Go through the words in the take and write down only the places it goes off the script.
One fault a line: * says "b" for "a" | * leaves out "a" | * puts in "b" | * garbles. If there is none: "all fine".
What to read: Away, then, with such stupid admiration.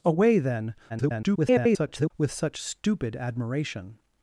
* garbles